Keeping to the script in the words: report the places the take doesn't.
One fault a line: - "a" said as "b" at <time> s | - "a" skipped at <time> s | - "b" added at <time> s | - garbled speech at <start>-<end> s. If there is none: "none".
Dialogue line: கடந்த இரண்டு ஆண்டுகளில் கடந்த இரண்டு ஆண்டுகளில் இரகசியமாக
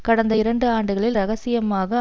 - "கடந்த இரண்டு ஆண்டுகளில்" skipped at 1.2 s